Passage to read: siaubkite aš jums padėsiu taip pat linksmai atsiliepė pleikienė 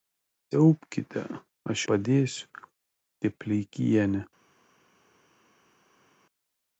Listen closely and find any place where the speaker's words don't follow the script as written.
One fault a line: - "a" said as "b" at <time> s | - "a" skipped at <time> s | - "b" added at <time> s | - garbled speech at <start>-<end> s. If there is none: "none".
- "jums" skipped at 1.8 s
- "pat linksmai atsiliepė" skipped at 3.4 s